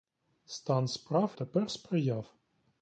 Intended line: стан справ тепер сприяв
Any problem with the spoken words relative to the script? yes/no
no